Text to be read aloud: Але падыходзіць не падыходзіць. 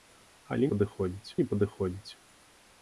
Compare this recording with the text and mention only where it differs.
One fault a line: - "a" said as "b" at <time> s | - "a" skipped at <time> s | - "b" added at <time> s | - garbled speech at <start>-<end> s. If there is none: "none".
none